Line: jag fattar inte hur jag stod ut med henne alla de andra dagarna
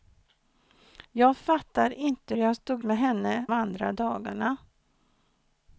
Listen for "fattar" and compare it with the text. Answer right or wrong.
right